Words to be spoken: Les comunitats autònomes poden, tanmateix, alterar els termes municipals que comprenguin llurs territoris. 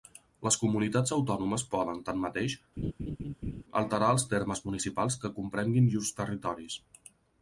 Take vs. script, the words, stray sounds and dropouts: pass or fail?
fail